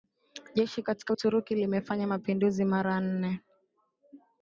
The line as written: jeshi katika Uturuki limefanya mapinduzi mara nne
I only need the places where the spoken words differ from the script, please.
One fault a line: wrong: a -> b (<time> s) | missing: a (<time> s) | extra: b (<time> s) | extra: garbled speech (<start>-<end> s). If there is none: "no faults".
no faults